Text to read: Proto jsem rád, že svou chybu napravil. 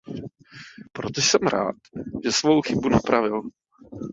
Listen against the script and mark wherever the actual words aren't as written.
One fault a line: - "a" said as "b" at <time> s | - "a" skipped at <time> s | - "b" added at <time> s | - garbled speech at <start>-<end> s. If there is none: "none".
none